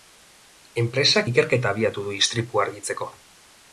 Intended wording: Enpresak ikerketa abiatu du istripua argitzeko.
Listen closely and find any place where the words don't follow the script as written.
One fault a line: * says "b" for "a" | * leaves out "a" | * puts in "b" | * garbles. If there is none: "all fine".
all fine